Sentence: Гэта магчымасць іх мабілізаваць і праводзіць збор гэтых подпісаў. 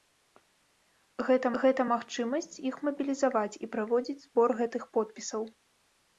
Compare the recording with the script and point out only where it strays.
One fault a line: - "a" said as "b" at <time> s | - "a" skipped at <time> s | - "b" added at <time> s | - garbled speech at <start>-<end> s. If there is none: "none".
- "гэта" added at 1.6 s